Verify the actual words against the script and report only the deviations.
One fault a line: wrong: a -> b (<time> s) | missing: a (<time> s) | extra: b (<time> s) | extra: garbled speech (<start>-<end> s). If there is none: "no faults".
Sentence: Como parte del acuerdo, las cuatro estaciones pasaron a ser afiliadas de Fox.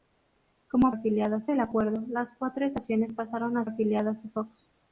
wrong: parte -> afiliadas (0.9 s)
missing: ser (3.6 s)